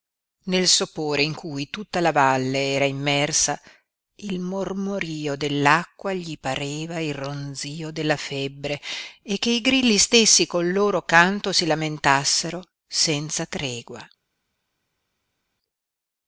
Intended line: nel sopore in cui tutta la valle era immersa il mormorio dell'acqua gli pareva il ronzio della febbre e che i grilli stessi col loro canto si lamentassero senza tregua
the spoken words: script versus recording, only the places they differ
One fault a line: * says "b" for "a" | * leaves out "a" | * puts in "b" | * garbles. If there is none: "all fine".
all fine